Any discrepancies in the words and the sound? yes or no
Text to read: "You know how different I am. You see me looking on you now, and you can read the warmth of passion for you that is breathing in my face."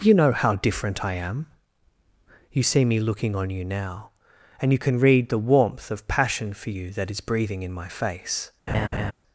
yes